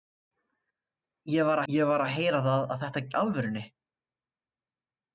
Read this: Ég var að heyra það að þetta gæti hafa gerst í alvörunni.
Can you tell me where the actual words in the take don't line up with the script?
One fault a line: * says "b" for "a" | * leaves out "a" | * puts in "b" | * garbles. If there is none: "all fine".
* puts in "ég var"
* leaves out "gæti hafa gerst"